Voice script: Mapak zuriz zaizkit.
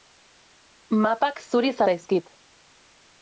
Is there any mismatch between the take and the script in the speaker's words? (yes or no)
no